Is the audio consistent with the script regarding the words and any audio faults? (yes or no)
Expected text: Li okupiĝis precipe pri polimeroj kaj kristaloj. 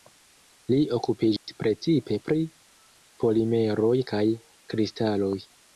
no